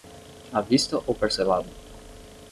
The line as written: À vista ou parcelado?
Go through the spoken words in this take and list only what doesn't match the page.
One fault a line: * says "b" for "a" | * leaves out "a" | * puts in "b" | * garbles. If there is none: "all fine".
all fine